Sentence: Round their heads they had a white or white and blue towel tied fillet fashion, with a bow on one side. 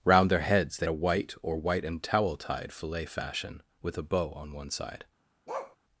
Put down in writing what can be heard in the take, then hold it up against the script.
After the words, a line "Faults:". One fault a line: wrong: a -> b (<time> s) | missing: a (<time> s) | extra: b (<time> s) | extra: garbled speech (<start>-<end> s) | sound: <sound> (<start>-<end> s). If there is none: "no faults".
Round their heads they a white or white and towel tied fillet fashion, with a bow on one side.
Faults:
missing: had (0.9 s)
missing: blue (2.0 s)
sound: bark (5.5-5.8 s)